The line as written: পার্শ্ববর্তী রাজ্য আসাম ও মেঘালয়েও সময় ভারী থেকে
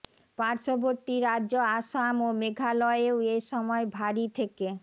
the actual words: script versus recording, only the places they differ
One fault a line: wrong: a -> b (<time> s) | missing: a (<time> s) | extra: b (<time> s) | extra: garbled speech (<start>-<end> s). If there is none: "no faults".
extra: এ (3.3 s)